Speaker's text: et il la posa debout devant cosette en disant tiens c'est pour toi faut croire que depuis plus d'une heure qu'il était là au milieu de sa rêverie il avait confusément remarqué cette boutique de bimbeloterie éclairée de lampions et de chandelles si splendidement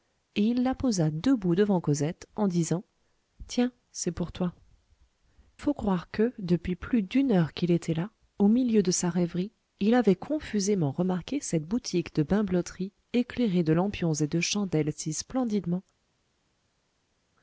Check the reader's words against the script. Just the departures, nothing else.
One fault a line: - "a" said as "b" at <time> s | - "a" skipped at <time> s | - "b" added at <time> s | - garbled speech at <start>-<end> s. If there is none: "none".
none